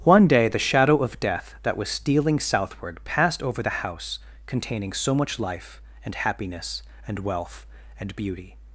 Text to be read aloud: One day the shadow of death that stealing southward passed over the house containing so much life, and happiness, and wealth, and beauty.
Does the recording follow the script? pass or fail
fail